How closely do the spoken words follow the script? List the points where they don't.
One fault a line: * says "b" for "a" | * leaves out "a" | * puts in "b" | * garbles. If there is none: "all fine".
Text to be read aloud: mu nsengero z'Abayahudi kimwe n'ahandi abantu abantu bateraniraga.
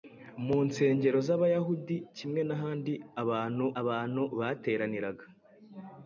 all fine